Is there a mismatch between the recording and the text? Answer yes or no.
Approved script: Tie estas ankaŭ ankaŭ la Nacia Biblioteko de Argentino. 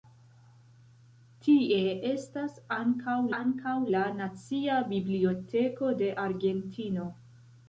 no